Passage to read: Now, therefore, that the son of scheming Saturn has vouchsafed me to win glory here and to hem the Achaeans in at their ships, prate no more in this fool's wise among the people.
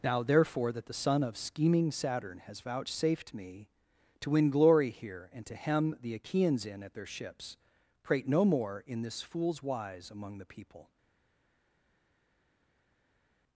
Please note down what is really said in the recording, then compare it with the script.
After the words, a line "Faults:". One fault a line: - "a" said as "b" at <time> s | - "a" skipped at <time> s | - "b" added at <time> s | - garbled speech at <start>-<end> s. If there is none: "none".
Now, therefore, that the son of scheming Saturn has vouchsafed me to win glory here and to hem the Achaeans in at their ships, prate no more in this fool's wise among the people.
Faults:
none